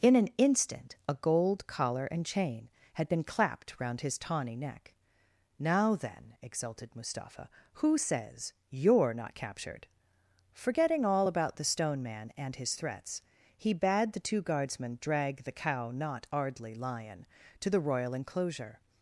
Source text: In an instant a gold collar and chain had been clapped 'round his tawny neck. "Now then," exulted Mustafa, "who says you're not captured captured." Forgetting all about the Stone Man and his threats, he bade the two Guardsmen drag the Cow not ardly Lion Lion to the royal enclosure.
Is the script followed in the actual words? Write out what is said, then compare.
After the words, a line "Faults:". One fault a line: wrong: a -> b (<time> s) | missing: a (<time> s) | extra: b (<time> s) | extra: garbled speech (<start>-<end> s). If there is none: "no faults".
In an instant a gold collar and chain had been clapped 'round his tawny neck. "Now then," exulted Mustafa, "who says you're not captured." Forgetting all about the Stone Man and his threats, he bade the two Guardsmen drag the Cow not ardly Lion to the royal enclosure.
Faults:
missing: captured (9.9 s)
missing: Lion (17.3 s)